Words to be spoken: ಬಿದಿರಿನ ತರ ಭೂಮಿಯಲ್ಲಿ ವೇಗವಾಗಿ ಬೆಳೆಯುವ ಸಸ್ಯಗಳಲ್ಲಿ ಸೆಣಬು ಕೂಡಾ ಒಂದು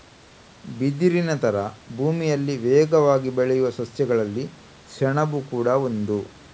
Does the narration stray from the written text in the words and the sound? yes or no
no